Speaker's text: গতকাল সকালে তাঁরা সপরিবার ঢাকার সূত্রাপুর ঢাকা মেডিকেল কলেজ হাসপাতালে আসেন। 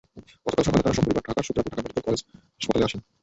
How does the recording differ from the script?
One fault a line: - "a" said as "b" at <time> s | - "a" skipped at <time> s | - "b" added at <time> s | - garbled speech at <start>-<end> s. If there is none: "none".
none